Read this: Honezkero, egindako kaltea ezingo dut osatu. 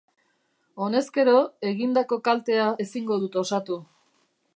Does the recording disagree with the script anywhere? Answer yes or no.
no